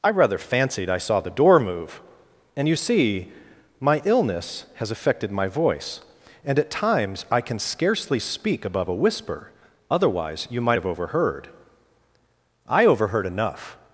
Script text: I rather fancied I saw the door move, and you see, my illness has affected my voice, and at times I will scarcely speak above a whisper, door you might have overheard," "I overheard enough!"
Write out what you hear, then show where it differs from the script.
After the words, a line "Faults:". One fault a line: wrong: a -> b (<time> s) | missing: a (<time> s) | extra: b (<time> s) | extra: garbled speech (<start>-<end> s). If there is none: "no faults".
I rather fancied I saw the door move, and you see, my illness has affected my voice, and at times I can scarcely speak above a whisper, otherwise you might have overheard," "I overheard enough!"
Faults:
wrong: will -> can (7.4 s)
wrong: door -> otherwise (9.9 s)